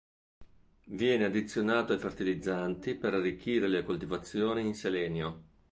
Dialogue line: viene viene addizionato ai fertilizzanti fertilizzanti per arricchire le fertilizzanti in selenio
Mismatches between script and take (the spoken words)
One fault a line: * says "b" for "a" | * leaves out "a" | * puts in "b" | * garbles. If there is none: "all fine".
* leaves out "viene"
* leaves out "fertilizzanti"
* says "coltivazioni" for "fertilizzanti"